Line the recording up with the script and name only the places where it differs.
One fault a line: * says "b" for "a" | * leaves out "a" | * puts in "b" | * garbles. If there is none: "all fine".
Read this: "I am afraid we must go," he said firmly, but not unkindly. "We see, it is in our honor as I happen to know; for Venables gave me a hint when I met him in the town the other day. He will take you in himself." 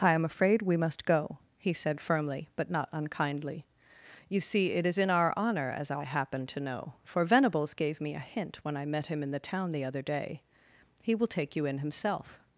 * says "You" for "We"